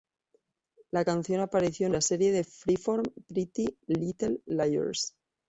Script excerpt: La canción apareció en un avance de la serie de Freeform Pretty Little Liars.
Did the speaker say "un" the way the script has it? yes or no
no